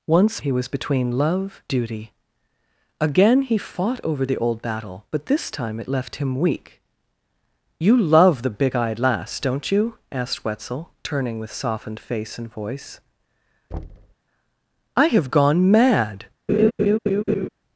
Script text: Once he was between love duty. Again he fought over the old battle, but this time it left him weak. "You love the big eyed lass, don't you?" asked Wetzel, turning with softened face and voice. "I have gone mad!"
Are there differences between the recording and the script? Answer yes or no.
no